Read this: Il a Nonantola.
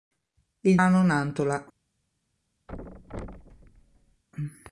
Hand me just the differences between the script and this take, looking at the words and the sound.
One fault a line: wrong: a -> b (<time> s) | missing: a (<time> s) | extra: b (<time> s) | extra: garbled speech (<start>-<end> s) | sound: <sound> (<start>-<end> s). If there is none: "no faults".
sound: thud (2.7-4.2 s)